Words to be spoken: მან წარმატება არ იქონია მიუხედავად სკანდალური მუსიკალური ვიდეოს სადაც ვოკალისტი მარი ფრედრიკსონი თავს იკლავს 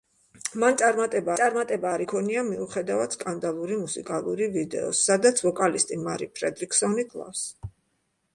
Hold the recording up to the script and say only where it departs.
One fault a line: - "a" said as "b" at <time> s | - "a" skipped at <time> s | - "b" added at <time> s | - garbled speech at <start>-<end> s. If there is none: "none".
- "წარმატება" added at 1.4 s
- "თავს" skipped at 7.1 s